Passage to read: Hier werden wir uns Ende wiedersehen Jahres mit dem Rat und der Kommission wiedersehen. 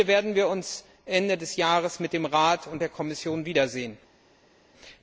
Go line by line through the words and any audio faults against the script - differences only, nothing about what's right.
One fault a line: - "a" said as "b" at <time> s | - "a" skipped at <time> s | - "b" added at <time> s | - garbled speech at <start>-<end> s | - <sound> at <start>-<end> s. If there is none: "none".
- "wiedersehen" said as "des" at 1.4 s